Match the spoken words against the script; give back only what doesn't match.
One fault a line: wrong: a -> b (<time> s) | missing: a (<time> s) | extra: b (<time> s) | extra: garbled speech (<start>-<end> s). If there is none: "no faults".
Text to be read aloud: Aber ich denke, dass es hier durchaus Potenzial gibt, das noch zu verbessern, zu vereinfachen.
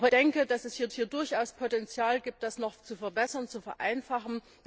missing: ich (0.1 s)
extra: hier (0.9 s)